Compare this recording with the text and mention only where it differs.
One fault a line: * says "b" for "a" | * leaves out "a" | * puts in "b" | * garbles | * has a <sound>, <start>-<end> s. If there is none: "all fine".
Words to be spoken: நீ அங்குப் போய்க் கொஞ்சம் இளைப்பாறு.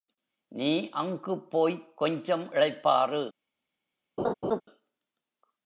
* has a laugh, 4.2-4.6 s